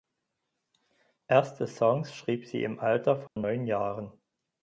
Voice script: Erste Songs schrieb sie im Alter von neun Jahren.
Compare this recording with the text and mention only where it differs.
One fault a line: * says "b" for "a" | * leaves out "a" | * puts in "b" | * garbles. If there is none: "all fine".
all fine